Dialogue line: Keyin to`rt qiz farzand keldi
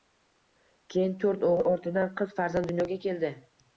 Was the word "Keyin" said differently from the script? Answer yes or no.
no